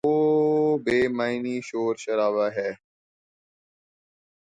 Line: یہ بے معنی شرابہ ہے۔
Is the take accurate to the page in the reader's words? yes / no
no